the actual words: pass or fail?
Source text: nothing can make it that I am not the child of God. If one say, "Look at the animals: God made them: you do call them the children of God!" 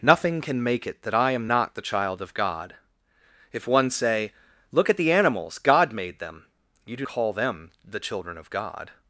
pass